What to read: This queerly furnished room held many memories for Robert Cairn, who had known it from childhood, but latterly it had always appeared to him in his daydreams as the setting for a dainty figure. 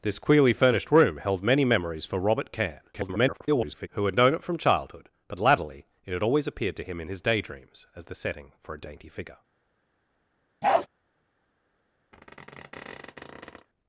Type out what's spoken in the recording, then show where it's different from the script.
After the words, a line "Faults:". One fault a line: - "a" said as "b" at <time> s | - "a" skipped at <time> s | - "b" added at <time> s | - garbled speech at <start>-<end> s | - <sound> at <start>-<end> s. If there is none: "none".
This queerly furnished room held many memories for Robert Cairn, [garbled] who had known it from childhood, but latterly it had always appeared to him in his daydreams as the setting for a dainty figure.
Faults:
- garbled speech at 2.9-3.9 s
- bark at 10.6-10.9 s
- squeak at 12.1-13.7 s